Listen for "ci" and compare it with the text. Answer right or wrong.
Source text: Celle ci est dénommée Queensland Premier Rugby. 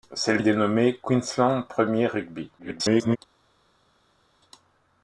wrong